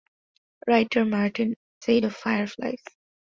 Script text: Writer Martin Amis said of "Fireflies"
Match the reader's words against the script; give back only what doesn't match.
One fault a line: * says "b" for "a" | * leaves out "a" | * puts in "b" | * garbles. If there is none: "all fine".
* leaves out "Amis"